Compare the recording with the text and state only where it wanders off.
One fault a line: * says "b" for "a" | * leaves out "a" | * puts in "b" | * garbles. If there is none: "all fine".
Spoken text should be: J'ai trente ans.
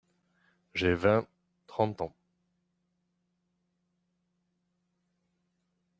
* puts in "vingt"